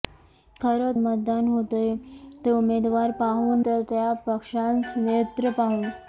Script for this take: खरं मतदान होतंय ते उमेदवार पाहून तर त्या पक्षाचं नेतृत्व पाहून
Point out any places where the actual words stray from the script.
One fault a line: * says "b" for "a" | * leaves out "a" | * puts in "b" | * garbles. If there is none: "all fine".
all fine